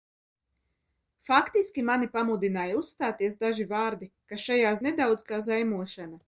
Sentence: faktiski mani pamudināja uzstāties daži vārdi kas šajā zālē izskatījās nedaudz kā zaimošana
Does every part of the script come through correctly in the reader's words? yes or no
no